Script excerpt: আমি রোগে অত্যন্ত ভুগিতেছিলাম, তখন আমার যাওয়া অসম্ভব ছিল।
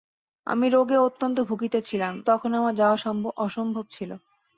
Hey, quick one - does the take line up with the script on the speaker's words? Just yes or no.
yes